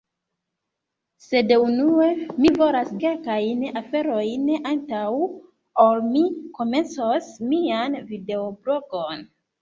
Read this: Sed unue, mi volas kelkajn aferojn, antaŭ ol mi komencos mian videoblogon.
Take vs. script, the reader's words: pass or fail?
pass